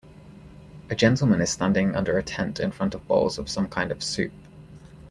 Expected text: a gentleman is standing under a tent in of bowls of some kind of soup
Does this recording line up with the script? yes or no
no